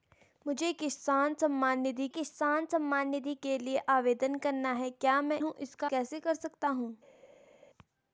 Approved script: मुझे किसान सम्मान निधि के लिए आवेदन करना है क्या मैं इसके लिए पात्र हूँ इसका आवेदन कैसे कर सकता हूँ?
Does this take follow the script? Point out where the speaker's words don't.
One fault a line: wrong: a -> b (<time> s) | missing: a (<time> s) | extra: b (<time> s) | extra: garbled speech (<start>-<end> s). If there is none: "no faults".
extra: किसान सम्मान निधि (2.1 s)
missing: इसके लिए पात्र (5.4 s)
missing: आवेदन (5.9 s)